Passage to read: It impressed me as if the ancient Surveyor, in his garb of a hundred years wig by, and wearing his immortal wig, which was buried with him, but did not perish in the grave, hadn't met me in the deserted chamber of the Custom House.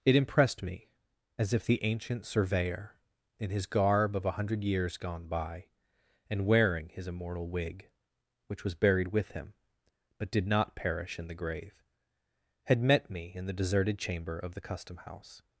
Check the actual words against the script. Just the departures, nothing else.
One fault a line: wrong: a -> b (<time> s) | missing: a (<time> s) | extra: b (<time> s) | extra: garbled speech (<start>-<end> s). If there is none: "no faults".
wrong: wig -> gone (5.0 s)
wrong: hadn't -> had (12.6 s)